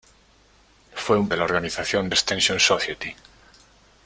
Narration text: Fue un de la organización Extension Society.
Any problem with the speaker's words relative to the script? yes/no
no